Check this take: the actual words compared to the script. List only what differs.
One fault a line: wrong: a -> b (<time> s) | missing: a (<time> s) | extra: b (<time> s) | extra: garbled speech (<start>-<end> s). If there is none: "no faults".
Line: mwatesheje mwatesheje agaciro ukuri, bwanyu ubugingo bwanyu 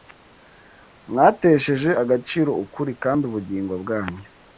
missing: mwatesheje (1.9 s)
wrong: bwanyu -> kandi (3.0 s)